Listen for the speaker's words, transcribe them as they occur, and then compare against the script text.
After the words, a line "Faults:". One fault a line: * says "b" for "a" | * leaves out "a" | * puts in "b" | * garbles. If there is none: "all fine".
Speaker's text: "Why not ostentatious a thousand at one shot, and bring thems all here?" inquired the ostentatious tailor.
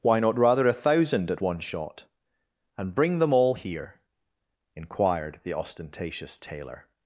"Why not rather a thousand at one shot, and bring them all here?" inquired the ostentatious tailor.
Faults:
* says "rather" for "ostentatious"
* says "them" for "thems"